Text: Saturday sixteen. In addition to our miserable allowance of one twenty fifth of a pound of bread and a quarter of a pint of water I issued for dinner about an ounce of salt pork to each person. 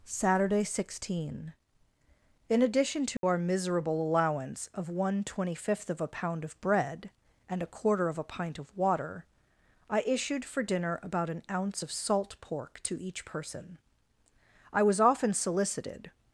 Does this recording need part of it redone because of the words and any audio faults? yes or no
yes